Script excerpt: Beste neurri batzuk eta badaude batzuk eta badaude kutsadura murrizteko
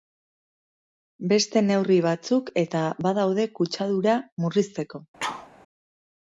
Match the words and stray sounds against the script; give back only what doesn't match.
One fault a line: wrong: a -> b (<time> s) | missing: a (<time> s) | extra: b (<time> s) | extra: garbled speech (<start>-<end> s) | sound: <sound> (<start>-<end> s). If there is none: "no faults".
missing: batzuk eta badaude (3.5 s)
sound: sneeze (5.2-5.5 s)